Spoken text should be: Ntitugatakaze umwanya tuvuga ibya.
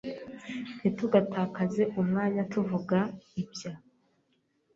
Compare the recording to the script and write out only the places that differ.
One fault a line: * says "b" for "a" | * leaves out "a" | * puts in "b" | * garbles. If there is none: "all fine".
all fine